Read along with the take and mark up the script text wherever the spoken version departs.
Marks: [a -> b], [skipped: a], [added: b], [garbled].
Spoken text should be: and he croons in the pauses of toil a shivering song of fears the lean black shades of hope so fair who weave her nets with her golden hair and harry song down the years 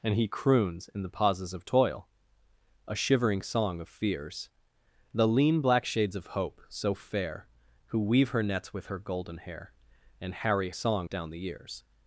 and he croons in the pauses of toil a shivering song of fears the lean black shades of hope so fair who weave her nets with her golden hair and harry song down the years